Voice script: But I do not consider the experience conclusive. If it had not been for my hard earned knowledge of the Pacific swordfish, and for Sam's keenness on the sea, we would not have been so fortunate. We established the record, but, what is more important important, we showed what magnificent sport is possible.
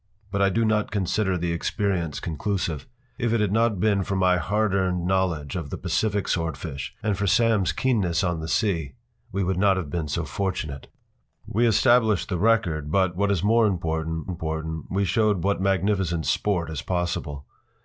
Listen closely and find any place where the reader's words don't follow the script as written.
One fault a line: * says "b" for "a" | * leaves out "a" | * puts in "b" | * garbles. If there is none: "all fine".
all fine